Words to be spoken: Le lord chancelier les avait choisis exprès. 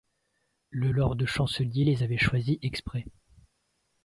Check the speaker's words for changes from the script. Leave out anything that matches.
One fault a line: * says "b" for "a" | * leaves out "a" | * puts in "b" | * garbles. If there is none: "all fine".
all fine